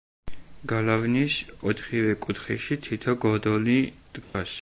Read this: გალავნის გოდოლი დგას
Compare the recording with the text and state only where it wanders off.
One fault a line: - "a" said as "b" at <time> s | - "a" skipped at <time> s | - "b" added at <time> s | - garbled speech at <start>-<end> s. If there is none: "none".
- "ოთხივე კუთხეში თითო" added at 1.7 s